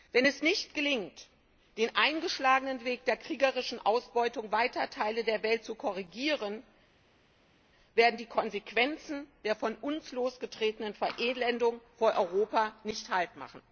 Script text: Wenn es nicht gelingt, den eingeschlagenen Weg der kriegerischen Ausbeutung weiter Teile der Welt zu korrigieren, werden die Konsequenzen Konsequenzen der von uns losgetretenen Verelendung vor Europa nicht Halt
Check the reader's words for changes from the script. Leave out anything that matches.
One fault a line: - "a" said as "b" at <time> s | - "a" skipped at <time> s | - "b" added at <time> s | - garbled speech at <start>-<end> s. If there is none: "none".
- "Konsequenzen" skipped at 9.3 s